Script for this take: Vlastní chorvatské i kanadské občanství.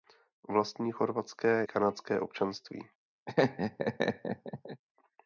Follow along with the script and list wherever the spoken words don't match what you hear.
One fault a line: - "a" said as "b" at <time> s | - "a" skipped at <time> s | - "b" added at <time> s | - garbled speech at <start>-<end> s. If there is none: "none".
- "i" skipped at 1.6 s